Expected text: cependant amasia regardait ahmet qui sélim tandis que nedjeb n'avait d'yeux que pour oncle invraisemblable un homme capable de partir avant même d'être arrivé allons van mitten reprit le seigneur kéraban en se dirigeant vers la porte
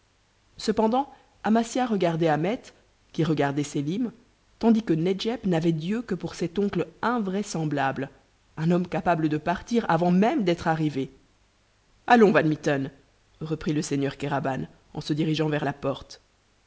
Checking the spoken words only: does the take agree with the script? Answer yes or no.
no